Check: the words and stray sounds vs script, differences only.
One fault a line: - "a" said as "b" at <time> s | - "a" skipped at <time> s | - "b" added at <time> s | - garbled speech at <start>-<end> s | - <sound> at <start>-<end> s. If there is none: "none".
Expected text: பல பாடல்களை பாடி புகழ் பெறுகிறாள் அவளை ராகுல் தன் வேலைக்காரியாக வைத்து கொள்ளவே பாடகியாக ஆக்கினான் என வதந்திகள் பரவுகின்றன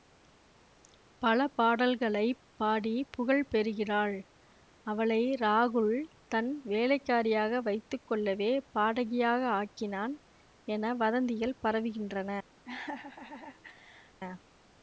- laugh at 12.6-14.2 s